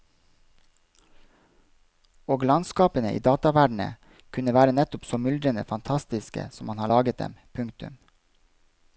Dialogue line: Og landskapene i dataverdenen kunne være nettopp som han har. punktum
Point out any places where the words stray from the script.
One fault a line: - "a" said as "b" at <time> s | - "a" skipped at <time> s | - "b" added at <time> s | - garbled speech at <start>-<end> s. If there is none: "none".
- "så myldrende fantastiske" added at 5.0 s
- "laget dem" added at 6.9 s